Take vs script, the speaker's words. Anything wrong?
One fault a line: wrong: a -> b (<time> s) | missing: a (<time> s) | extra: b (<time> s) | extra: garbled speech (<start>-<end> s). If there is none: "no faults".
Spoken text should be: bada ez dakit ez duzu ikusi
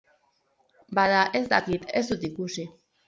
wrong: duzu -> dut (2.1 s)